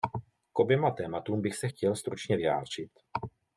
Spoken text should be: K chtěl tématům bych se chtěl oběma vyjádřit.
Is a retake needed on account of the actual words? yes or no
yes